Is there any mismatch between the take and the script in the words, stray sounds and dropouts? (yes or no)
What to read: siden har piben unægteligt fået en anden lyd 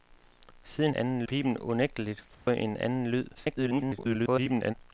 yes